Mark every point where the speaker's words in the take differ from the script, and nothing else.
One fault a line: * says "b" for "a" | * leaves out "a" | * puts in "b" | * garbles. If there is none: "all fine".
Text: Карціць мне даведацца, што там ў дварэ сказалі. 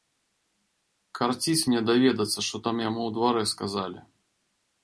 * puts in "яму"